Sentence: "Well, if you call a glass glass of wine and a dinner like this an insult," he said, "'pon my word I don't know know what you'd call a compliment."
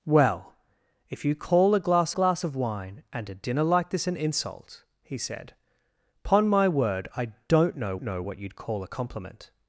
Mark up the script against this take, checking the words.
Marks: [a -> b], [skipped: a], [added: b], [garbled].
"Well, if you call a glass glass of wine and a dinner like this an insult," he said, "'pon my word I don't know know what you'd call a compliment."